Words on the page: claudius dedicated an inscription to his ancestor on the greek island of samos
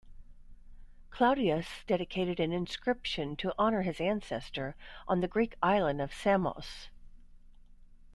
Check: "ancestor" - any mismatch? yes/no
no